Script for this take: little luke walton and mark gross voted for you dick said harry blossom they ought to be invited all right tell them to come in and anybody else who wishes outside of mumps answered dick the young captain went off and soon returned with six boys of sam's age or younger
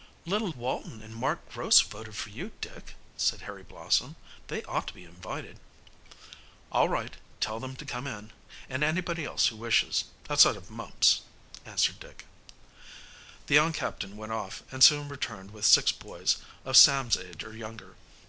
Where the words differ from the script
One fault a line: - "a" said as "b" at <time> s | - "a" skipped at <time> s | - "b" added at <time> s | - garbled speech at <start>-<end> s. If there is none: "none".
- "luke" skipped at 0.5 s